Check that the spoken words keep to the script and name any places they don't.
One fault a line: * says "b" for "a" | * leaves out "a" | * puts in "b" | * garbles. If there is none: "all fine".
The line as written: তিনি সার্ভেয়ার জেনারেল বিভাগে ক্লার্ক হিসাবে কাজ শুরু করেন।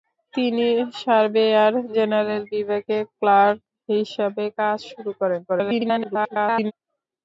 * garbles